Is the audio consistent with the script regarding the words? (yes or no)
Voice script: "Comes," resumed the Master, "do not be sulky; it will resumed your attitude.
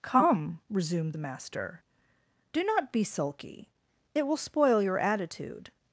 no